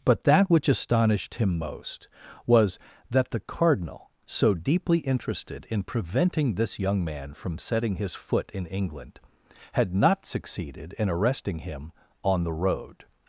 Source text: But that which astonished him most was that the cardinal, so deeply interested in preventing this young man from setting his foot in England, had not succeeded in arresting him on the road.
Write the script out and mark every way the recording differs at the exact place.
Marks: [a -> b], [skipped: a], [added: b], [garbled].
But that which astonished him most was that the cardinal, so deeply interested in preventing this young man from setting his foot in England, had not succeeded in arresting him on the road.